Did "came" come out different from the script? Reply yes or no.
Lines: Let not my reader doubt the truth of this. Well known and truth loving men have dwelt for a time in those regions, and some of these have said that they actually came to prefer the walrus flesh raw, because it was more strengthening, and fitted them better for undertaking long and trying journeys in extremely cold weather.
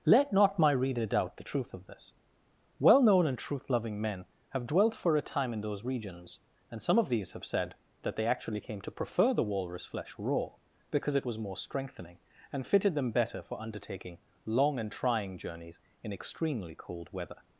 no